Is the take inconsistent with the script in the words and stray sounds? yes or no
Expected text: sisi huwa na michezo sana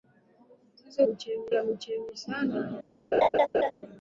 yes